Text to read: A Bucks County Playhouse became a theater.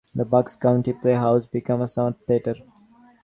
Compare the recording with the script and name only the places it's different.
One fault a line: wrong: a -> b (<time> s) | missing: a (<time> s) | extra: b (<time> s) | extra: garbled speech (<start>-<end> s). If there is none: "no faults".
wrong: A -> The (0.1 s)
extra: summer (1.9 s)